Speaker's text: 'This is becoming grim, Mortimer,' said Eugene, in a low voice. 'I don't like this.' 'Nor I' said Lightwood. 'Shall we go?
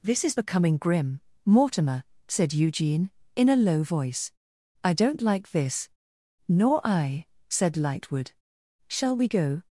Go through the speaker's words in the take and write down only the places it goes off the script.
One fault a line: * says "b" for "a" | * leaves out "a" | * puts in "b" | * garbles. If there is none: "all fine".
all fine